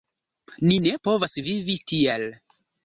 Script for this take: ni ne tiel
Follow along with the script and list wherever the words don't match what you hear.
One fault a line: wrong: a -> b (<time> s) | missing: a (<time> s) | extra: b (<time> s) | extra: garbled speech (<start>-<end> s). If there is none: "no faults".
extra: povas vivi (1.1 s)